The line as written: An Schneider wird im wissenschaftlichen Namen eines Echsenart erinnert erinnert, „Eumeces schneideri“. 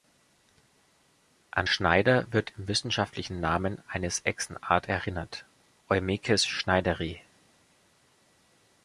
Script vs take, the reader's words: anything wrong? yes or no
yes